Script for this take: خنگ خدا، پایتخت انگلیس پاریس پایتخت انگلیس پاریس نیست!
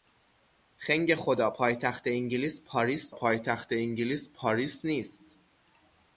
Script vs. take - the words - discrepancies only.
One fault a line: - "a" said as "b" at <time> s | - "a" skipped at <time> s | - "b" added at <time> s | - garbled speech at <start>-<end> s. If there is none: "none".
none